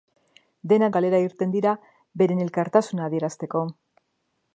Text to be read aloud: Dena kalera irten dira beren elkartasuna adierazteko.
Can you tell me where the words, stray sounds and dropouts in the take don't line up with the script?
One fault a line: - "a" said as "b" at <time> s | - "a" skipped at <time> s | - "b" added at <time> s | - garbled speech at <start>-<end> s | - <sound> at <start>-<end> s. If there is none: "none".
none